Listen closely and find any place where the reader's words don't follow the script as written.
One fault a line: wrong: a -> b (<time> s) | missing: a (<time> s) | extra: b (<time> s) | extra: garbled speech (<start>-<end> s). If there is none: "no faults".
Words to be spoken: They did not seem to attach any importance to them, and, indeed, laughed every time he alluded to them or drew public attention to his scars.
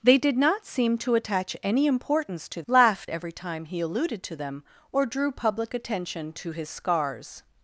missing: them and indeed (2.6 s)